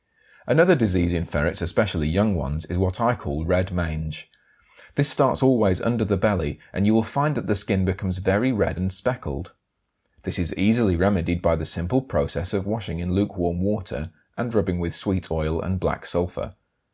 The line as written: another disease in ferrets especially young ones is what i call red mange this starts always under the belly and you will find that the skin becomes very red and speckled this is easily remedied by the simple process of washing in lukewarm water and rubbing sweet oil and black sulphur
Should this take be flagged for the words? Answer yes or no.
yes